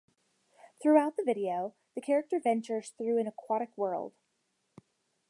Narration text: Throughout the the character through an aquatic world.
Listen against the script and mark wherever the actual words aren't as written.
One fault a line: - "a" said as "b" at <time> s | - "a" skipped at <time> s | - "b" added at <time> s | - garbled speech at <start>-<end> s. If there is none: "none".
- "video" added at 1.2 s
- "ventures" added at 2.4 s